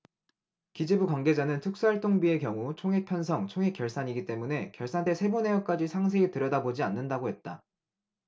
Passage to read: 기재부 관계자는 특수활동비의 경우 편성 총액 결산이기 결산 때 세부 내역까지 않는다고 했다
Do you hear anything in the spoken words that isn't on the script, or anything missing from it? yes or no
yes